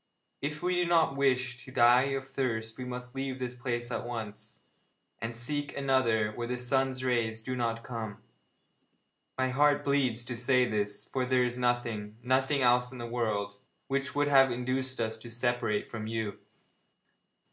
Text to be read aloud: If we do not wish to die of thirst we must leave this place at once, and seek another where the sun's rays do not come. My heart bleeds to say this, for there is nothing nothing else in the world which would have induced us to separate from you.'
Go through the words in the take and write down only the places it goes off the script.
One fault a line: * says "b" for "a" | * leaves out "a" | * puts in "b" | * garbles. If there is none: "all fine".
all fine